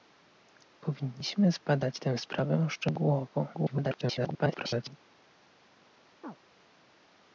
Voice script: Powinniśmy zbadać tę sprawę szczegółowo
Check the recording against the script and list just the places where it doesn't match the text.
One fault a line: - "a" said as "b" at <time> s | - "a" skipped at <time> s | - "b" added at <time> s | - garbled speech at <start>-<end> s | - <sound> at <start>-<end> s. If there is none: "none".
- garbled speech at 3.5-5.0 s
- chirp at 6.2-6.4 s